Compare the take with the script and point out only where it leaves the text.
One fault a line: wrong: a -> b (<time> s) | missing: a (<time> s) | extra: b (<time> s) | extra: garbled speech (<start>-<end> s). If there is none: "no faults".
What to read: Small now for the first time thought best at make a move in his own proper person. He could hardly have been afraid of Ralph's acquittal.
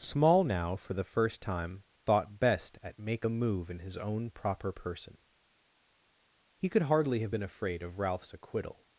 no faults